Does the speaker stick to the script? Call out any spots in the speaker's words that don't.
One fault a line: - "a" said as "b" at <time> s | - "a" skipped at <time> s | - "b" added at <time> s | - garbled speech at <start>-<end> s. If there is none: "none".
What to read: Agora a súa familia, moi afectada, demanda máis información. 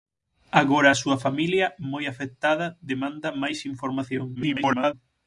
- garbled speech at 4.4-4.9 s